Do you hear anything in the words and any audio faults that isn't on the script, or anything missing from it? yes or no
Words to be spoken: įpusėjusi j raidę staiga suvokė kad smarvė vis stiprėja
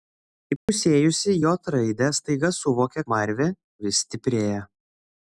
yes